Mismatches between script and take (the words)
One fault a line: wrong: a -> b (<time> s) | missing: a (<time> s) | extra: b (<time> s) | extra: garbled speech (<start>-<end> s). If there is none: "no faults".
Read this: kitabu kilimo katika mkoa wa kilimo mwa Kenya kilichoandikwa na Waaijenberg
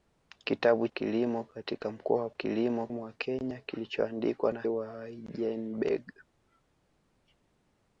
no faults